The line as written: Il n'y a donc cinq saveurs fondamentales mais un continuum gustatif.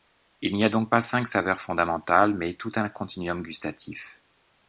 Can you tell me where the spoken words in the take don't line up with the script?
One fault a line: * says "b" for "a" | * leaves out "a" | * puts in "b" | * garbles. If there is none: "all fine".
* puts in "pas"
* puts in "tout"